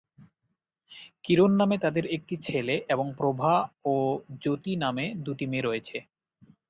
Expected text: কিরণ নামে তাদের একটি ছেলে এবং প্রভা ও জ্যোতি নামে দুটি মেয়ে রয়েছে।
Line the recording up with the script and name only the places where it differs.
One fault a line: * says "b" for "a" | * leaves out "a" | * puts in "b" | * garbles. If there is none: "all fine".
all fine